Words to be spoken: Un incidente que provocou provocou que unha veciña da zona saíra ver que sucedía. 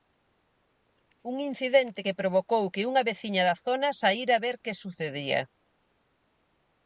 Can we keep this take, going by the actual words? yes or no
no